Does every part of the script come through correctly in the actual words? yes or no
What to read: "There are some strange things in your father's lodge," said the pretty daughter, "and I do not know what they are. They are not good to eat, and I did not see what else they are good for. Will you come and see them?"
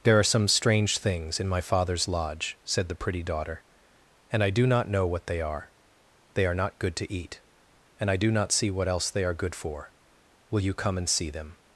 no